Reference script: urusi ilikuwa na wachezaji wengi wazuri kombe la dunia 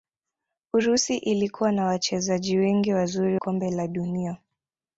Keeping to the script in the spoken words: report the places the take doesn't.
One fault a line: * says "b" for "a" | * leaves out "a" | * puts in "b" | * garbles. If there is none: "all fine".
all fine